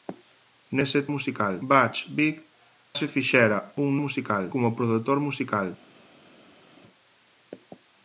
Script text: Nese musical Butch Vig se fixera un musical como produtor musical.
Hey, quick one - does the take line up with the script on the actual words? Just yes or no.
yes